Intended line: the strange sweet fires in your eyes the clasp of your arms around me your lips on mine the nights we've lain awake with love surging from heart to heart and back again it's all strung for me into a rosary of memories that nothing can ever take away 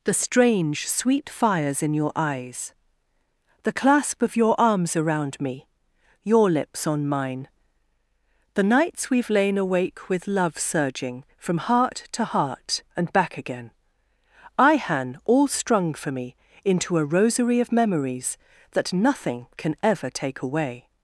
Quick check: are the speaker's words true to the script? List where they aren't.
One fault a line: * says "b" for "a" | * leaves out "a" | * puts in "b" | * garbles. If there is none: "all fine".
* says "ihan" for "it's"